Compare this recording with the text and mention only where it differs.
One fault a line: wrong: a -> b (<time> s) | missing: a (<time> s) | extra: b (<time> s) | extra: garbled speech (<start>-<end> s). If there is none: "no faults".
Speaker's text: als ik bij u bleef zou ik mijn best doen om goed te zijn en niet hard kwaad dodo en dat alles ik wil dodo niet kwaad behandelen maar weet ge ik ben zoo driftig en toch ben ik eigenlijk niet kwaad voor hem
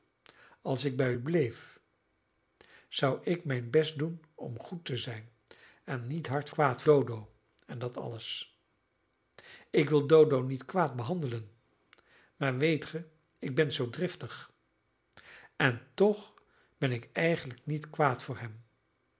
no faults